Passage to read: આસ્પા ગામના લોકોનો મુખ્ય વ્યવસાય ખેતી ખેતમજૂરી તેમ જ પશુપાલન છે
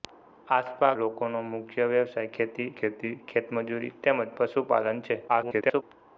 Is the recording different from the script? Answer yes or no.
yes